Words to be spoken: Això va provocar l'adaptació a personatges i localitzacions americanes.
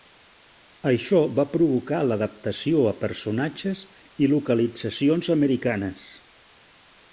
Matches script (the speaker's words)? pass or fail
pass